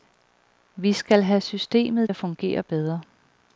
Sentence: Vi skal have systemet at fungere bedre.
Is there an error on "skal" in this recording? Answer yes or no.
no